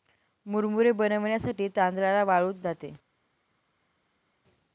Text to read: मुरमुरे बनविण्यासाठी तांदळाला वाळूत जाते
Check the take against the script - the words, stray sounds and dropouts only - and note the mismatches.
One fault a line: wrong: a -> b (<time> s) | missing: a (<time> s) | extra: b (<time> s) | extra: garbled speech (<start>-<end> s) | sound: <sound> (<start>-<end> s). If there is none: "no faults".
no faults